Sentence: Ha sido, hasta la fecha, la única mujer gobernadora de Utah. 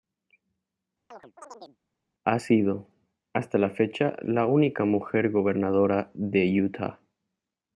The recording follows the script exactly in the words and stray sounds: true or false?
false